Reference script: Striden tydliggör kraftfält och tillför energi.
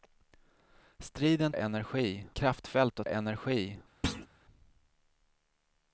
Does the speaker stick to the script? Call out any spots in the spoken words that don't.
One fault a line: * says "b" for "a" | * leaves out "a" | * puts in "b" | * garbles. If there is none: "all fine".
* says "energi" for "tydliggör"
* leaves out "tillför"